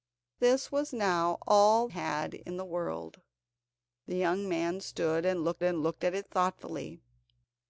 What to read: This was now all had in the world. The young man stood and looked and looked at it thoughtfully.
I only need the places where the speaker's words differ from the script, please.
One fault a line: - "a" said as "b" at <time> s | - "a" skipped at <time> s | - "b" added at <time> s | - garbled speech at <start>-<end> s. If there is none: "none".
none